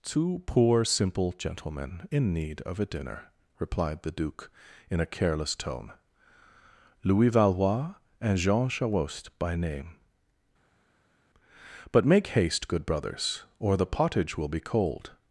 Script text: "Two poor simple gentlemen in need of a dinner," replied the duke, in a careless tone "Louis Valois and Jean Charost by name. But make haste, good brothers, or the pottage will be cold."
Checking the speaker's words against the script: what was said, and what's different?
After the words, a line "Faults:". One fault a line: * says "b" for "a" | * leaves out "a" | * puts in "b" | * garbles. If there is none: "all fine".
"Two poor simple gentlemen in need of a dinner," replied the duke, in a careless tone "Louis Valois and Jean Charost by name. But make haste, good brothers, or the pottage will be cold."
Faults:
all fine